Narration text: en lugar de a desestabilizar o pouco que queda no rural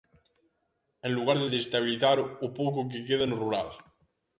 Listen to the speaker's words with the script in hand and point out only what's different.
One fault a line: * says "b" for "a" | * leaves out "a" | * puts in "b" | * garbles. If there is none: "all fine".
all fine